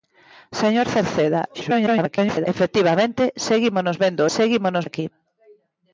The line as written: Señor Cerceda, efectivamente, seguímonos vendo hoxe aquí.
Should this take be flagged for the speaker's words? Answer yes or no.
yes